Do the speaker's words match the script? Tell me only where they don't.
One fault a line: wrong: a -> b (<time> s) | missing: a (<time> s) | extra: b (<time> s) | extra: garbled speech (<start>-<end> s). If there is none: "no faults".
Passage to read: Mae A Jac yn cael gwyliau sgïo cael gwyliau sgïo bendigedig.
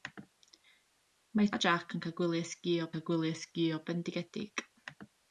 no faults